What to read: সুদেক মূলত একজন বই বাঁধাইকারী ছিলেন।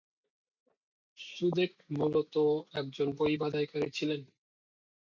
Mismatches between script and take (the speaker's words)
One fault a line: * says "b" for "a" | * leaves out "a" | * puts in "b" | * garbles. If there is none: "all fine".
all fine